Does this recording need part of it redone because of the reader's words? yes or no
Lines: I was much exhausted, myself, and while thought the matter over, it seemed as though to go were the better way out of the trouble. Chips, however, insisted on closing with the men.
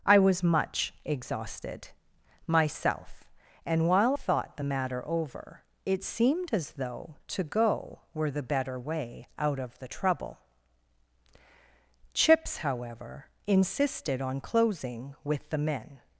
no